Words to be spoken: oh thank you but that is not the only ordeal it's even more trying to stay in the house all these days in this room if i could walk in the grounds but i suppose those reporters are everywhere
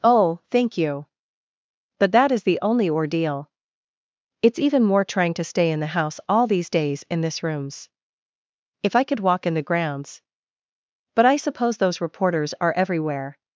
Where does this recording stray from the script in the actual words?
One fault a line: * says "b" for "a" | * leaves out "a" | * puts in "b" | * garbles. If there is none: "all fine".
* leaves out "not"
* says "rooms" for "room"